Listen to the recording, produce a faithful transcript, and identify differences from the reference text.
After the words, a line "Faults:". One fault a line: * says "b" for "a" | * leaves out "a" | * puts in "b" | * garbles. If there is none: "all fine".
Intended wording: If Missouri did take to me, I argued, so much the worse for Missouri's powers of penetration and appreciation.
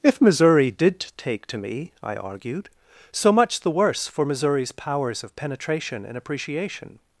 If Missouri did take to me, I argued, so much the worse for Missouri's powers of penetration and appreciation.
Faults:
all fine